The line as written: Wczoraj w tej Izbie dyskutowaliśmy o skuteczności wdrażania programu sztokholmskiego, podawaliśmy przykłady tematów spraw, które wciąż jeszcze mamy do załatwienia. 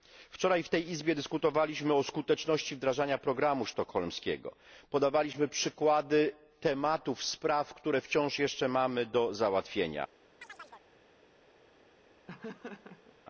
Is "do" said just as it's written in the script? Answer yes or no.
yes